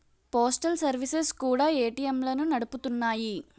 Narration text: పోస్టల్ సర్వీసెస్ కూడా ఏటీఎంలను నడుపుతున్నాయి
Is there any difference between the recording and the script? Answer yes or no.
no